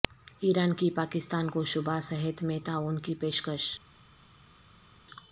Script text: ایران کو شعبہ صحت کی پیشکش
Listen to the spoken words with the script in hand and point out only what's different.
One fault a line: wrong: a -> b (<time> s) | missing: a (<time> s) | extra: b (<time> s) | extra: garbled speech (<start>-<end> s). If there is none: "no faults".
extra: کی پاکستان (0.7 s)
extra: میں تعاون (2.4 s)